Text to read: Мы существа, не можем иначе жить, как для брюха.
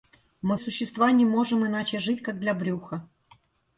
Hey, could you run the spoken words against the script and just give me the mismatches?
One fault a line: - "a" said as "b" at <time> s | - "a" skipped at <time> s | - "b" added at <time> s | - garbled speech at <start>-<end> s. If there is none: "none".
none